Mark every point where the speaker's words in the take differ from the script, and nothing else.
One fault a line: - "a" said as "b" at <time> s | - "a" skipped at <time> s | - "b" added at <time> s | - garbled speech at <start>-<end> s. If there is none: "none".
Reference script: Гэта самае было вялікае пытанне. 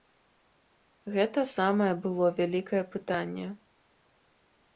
none